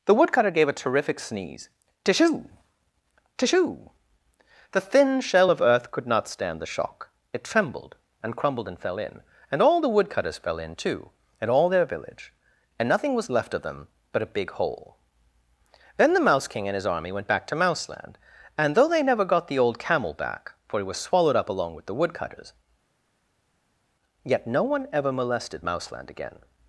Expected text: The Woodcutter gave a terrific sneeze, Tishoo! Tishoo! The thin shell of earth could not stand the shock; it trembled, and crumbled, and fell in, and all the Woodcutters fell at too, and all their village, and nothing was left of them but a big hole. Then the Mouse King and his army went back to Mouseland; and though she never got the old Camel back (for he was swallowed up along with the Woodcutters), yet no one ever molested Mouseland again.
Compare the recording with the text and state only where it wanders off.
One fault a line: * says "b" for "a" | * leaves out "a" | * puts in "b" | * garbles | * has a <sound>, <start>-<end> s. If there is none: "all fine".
* says "in" for "at"
* says "they" for "she"